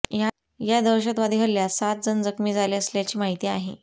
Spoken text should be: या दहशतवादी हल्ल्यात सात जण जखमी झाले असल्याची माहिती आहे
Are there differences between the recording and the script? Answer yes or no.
no